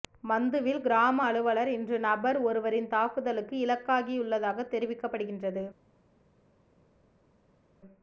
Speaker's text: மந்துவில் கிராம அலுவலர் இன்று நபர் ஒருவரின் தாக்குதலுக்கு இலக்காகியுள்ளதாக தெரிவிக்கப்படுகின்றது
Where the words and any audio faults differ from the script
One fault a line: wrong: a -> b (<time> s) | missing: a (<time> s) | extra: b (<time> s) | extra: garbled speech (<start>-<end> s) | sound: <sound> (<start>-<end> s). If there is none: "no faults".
no faults